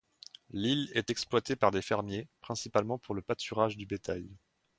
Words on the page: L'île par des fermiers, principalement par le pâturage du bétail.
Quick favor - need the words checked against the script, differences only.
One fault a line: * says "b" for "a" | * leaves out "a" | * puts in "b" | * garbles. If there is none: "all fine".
* puts in "est exploitée"
* says "pour" for "par"